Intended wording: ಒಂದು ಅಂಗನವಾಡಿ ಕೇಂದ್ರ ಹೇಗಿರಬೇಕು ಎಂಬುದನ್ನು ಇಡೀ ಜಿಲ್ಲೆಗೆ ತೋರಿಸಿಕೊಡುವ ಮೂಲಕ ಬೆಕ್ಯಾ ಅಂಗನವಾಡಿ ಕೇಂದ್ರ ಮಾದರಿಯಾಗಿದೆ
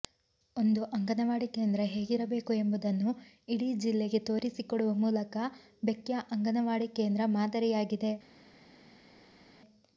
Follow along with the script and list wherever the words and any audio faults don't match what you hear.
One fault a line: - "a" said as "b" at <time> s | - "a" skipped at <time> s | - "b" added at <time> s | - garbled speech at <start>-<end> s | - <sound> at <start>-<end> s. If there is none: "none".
none